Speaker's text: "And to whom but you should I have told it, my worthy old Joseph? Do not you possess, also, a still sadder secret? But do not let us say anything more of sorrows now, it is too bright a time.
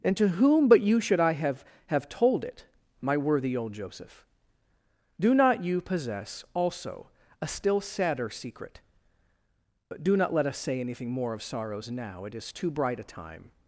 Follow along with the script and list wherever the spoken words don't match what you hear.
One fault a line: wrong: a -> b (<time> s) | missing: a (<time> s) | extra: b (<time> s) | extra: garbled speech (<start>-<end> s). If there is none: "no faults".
extra: have (1.9 s)